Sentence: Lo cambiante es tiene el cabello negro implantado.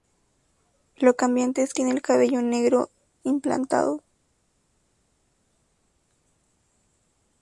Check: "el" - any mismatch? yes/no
no